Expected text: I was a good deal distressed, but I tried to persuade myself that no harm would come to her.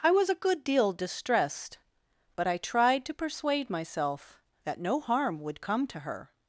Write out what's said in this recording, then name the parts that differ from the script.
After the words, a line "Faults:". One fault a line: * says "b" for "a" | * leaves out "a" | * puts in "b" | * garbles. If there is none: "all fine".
I was a good deal distressed, but I tried to persuade myself that no harm would come to her.
Faults:
all fine